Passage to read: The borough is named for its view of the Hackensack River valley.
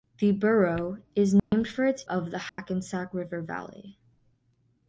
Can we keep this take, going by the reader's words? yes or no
no